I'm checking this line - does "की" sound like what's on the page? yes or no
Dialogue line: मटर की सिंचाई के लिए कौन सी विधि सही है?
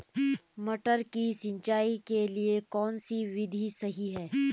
yes